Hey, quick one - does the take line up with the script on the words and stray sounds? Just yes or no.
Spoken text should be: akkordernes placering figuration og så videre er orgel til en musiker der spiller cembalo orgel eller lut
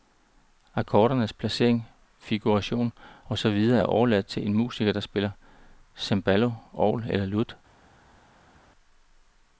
no